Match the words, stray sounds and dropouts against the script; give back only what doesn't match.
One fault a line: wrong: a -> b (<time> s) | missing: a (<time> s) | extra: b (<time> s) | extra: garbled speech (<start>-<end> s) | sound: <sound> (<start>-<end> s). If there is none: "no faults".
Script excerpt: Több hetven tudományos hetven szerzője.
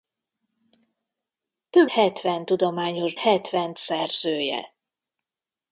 no faults